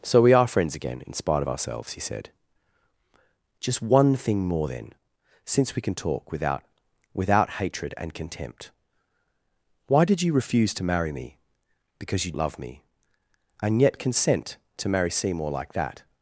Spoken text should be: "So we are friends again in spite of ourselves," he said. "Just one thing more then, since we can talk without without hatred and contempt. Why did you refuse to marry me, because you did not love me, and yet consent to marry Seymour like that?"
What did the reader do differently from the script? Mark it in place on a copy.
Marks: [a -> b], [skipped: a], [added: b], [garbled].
"So we are friends again in spite of ourselves," he said. "Just one thing more then, since we can talk without without hatred and contempt. Why did you refuse to marry me, because you [skipped: did not] love me, and yet consent to marry Seymour like that?"